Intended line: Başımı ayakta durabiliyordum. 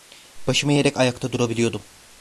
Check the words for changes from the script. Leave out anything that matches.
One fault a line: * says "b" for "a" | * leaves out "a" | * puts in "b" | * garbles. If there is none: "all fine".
* puts in "eğerek"